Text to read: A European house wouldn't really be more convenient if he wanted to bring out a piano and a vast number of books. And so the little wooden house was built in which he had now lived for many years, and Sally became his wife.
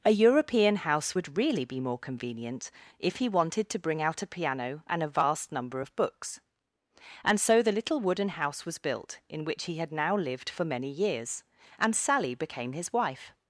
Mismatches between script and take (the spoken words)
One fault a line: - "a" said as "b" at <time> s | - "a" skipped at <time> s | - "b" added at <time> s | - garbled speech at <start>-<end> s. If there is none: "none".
- "wouldn't" said as "would" at 1.1 s